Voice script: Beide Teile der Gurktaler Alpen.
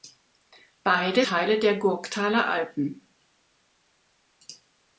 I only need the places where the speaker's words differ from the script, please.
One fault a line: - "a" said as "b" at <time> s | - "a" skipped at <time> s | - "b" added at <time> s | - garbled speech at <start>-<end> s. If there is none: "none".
none